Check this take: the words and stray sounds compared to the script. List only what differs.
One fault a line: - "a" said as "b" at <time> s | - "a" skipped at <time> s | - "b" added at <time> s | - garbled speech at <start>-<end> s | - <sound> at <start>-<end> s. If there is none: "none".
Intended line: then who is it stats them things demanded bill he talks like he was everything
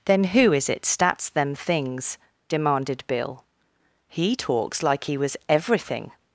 none